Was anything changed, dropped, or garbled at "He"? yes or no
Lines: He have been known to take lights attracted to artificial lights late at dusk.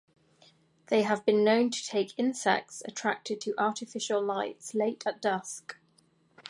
yes